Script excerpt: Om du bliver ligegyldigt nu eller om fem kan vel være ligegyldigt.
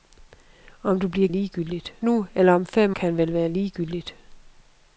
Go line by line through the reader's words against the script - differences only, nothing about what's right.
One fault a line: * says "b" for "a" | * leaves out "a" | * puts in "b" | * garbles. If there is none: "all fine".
all fine